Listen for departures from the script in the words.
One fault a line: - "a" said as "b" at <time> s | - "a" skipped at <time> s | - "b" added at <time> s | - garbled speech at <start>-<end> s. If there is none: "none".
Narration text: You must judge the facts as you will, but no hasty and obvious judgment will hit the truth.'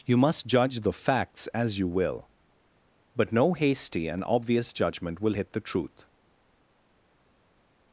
none